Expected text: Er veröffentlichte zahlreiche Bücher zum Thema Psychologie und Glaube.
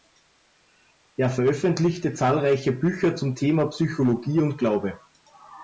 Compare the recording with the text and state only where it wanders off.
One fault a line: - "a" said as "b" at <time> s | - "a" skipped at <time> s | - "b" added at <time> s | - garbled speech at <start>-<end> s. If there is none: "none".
none